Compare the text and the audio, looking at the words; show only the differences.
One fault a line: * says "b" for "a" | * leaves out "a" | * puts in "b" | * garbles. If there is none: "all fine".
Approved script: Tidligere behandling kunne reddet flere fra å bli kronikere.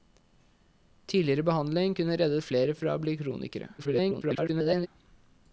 * garbles